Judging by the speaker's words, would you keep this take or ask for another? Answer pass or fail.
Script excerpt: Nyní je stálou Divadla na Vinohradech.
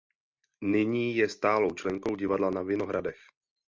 fail